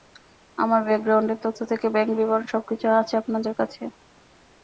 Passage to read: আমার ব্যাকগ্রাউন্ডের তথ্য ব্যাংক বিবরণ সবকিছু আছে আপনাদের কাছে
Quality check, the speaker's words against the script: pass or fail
fail